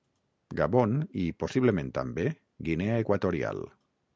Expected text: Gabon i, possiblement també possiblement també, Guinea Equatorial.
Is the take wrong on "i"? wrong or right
right